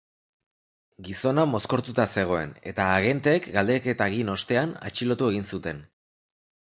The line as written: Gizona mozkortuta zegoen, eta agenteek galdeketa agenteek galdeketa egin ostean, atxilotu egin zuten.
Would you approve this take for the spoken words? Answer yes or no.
no